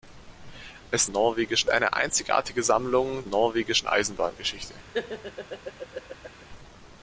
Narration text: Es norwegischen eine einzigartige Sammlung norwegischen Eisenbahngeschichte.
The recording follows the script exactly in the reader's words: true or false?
true